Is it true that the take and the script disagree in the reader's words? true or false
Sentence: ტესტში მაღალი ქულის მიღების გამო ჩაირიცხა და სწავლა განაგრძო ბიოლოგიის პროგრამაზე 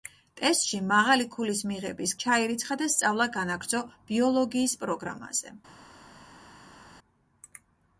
true